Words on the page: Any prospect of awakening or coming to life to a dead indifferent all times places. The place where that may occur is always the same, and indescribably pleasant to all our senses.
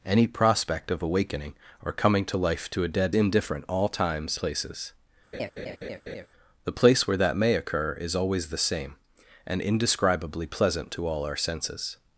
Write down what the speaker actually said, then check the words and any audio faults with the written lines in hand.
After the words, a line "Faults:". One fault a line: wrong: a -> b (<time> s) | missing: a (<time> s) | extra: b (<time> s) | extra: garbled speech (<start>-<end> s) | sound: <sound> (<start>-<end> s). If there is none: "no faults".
Any prospect of awakening or coming to life to a dead indifferent all times places. The place where that may occur is always the same, and indescribably pleasant to all our senses.
Faults:
sound: laugh (5.3-6.3 s)